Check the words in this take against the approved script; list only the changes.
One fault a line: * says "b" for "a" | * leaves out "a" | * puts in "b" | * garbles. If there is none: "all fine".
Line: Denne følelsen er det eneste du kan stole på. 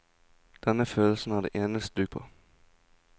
* leaves out "kan stole"